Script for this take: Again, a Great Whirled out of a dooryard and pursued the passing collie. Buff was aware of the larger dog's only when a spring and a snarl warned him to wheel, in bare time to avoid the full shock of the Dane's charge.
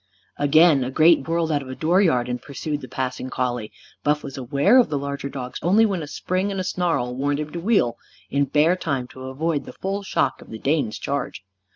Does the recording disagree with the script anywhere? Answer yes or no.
no